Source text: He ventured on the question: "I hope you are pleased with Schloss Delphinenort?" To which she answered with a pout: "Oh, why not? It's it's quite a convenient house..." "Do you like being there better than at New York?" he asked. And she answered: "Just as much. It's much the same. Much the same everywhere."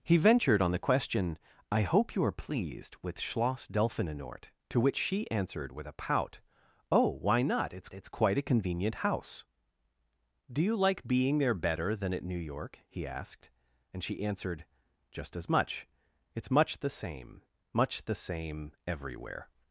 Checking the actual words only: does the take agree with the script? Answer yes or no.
yes